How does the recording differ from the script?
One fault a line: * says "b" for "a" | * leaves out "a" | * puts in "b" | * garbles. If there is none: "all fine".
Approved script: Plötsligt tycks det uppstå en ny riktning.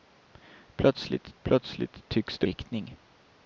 * puts in "plötsligt"
* leaves out "uppstå en ny"